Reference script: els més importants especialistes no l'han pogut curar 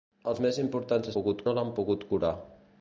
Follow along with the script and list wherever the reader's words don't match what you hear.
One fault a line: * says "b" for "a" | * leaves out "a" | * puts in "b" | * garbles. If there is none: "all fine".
* says "pogut" for "especialistes"